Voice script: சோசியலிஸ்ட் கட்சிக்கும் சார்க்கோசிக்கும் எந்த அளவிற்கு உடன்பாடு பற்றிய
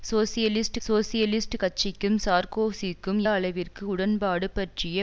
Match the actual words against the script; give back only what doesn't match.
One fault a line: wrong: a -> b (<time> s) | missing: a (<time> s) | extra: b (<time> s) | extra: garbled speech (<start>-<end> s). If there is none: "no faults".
extra: சோசியலிஸ்ட் (0.8 s)
missing: எந்த (3.2 s)